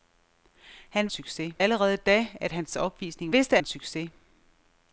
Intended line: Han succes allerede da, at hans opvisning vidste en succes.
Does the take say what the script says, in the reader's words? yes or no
yes